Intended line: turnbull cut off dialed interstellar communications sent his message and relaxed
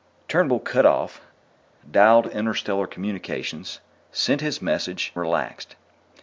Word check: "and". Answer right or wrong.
wrong